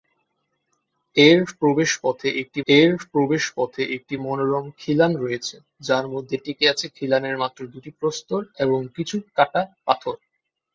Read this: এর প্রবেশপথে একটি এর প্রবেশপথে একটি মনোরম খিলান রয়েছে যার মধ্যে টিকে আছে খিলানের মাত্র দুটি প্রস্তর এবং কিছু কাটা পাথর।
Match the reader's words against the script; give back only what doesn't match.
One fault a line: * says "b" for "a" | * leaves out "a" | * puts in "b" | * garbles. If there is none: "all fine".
all fine